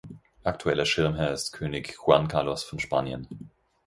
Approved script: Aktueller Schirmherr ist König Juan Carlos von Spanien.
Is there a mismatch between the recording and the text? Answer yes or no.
no